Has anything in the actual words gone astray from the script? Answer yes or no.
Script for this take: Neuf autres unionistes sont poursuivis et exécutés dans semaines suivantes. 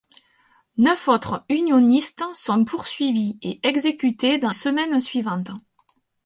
no